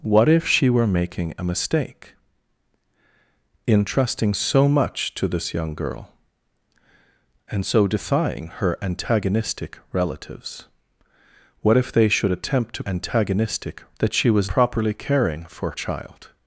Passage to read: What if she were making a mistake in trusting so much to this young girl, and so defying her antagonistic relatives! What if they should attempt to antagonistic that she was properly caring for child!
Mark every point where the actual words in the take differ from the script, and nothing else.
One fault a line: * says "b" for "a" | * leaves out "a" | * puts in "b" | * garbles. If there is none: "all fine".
all fine